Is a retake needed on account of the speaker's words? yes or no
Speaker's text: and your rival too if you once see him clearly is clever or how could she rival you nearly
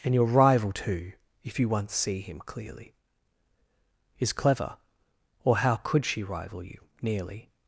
no